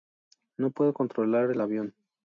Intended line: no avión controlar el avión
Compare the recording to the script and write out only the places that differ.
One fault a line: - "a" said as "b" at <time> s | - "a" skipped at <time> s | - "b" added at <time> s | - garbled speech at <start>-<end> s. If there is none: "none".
- "avión" said as "puedo" at 0.7 s